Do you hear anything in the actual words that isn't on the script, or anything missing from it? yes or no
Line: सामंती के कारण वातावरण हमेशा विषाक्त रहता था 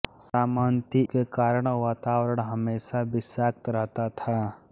no